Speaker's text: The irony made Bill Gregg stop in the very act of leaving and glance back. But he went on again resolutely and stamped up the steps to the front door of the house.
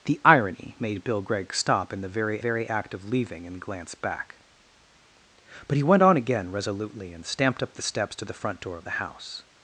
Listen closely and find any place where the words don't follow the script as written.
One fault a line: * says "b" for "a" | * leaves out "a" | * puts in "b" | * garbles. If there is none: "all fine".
* puts in "very"